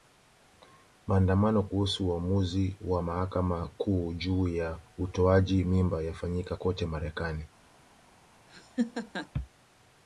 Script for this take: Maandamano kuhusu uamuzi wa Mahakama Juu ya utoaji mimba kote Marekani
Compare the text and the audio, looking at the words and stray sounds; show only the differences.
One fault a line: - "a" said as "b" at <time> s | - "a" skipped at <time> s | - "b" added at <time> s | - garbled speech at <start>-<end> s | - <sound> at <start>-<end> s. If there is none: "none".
- "Kuu" added at 3.7 s
- "yafanyika" added at 6.0 s
- laugh at 8.5-9.3 s